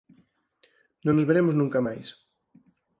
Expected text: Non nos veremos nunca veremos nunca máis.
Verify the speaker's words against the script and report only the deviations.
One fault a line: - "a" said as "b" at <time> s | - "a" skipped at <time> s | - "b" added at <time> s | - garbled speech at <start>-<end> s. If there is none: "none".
- "veremos nunca" skipped at 1.8 s